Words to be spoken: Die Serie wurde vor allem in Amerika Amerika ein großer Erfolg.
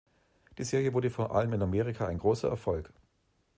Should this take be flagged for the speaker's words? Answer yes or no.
yes